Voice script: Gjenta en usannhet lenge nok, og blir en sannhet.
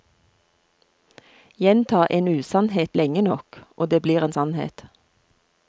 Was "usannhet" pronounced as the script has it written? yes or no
yes